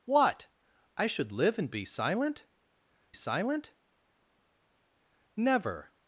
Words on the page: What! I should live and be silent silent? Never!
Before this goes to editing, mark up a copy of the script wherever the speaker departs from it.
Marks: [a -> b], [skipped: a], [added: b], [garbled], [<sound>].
What! I should live and be silent silent? Never!